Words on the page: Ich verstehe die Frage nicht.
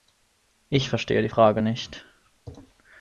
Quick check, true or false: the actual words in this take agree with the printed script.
true